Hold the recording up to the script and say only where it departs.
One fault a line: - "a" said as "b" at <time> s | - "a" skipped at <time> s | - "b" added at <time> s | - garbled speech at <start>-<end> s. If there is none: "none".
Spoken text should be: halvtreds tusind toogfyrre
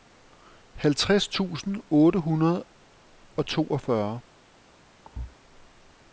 - "otte hundrede og" added at 1.9 s